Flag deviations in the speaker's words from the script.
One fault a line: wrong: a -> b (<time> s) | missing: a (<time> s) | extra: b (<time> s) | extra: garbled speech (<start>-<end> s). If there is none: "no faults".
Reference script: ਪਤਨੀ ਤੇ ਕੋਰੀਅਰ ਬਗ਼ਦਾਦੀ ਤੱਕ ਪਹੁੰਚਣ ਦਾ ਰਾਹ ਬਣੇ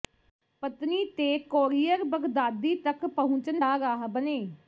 no faults